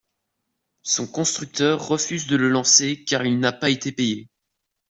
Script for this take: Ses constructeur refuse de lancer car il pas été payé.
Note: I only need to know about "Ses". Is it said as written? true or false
false